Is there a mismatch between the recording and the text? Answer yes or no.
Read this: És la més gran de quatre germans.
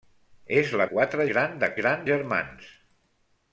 yes